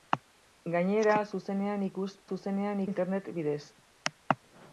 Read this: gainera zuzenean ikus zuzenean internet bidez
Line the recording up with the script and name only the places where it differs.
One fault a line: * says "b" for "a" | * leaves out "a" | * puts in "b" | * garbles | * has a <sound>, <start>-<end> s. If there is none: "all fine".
all fine